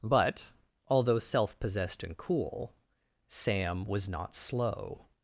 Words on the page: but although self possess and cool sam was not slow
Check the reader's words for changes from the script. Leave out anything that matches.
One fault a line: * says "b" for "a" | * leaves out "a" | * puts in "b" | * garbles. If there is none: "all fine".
* says "possessed" for "possess"